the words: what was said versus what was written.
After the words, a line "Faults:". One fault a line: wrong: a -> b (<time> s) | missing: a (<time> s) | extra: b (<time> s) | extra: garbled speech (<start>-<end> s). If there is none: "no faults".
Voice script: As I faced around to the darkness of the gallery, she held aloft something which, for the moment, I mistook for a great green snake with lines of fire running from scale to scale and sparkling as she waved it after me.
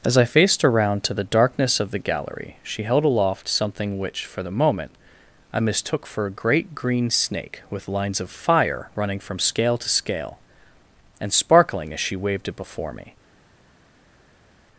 As I faced around to the darkness of the gallery, she held aloft something which, for the moment, I mistook for a great green snake with lines of fire running from scale to scale and sparkling as she waved it before me.
Faults:
wrong: after -> before (12.6 s)